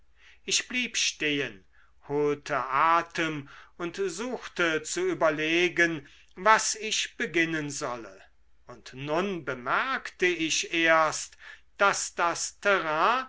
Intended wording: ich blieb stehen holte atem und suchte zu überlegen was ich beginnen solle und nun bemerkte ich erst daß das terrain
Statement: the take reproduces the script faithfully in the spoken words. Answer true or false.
true